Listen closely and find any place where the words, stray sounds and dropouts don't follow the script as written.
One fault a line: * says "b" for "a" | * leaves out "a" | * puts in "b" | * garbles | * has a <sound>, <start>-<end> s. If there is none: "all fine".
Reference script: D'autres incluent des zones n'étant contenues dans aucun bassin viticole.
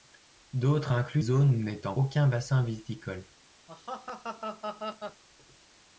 * leaves out "des"
* leaves out "contenues dans"
* has a laugh, 3.7-5.2 s